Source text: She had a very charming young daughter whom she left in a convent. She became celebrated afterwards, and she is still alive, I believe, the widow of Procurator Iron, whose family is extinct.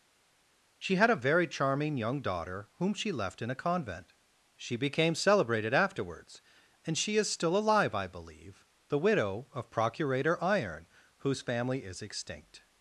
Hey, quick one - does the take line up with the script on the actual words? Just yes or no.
yes